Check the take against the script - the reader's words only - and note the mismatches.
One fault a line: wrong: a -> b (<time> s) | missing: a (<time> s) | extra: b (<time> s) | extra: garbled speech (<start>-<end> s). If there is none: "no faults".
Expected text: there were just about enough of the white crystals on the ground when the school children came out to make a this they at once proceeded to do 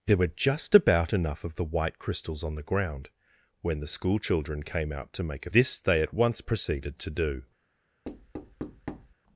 no faults